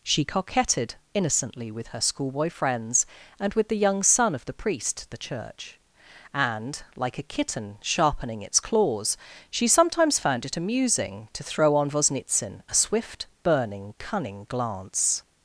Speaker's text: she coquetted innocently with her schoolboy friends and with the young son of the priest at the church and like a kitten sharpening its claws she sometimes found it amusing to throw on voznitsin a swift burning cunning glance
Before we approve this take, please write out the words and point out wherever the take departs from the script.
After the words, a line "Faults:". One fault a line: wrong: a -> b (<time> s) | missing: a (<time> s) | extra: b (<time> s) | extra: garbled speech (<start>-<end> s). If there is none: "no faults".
she coquetted innocently with her schoolboy friends and with the young son of the priest the church and like a kitten sharpening its claws she sometimes found it amusing to throw on voznitsin a swift burning cunning glance
Faults:
missing: at (5.1 s)